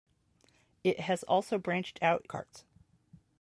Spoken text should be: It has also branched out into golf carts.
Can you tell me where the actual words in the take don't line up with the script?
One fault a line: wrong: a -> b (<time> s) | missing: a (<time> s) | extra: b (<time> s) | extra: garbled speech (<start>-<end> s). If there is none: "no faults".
missing: into golf (2.3 s)